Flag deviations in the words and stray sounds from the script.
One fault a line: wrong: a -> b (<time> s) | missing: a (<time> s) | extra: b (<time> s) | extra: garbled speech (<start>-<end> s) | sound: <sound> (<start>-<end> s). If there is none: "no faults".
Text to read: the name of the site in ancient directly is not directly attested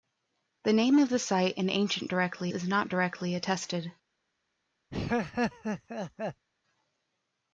sound: laugh (4.9-6.4 s)